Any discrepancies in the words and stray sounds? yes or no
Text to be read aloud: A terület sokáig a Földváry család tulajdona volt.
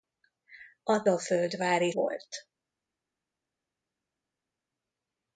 yes